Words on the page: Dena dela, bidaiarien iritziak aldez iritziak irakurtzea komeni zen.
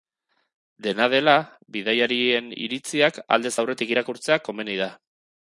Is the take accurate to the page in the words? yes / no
no